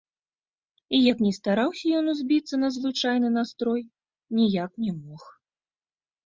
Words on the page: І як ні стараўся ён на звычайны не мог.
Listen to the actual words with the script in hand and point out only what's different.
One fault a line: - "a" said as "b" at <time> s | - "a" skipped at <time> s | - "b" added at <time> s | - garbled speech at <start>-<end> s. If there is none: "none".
- "узбіцца" added at 2.1 s
- "настрой ніяк" added at 3.4 s